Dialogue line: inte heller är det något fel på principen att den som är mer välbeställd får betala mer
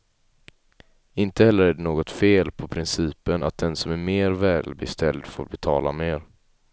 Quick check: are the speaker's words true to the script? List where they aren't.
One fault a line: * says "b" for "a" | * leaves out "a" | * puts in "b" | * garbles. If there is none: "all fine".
all fine